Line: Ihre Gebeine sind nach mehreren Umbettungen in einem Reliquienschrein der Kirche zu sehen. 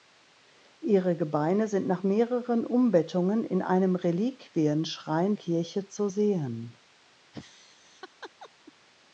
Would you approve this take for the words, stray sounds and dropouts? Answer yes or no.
no